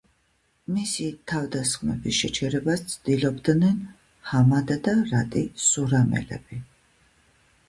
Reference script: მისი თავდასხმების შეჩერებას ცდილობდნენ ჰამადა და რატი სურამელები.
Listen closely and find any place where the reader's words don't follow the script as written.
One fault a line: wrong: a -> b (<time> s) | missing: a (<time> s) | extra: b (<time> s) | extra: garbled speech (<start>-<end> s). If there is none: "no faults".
no faults